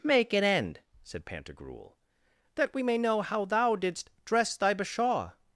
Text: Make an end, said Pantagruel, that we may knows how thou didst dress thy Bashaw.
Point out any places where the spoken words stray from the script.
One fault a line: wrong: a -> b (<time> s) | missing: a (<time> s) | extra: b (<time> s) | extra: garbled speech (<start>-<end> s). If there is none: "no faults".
wrong: knows -> know (3.0 s)